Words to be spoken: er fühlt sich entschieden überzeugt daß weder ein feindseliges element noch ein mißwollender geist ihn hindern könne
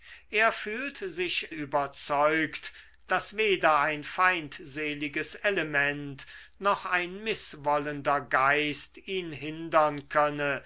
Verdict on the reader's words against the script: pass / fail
fail